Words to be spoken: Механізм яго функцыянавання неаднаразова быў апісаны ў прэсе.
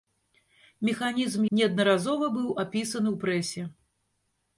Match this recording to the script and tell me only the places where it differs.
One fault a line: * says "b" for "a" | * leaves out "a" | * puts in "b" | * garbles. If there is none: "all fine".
* leaves out "яго функцыянавання"